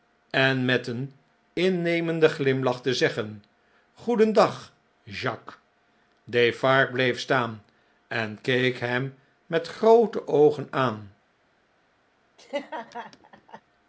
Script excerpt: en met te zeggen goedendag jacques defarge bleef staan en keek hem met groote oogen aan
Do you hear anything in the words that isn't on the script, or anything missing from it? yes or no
yes